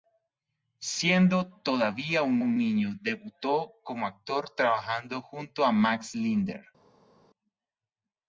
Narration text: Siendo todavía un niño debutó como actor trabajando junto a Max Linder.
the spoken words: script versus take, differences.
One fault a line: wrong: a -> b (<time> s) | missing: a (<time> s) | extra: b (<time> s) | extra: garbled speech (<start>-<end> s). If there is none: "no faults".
extra: un (2.4 s)